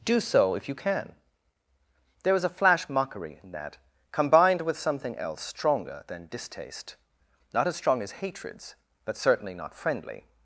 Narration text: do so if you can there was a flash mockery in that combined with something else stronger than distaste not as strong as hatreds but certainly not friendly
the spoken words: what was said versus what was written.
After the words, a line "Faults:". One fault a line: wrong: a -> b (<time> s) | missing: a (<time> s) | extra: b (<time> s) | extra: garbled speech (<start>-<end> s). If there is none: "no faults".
do so if you can there was a flash mockery in that combined with something else stronger than distaste not as strong as hatreds but certainly not friendly
Faults:
no faults